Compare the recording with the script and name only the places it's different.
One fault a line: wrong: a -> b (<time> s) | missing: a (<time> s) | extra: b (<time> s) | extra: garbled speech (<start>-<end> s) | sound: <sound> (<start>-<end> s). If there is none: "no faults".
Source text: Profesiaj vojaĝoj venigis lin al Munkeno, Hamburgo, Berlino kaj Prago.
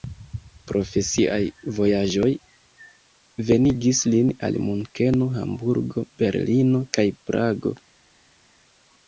no faults